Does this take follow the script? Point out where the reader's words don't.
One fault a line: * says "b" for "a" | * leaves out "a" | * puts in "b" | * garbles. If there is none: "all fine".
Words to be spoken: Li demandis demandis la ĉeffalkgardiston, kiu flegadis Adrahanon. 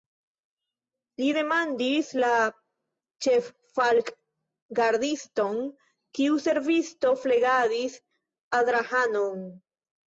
* leaves out "demandis"
* puts in "servisto"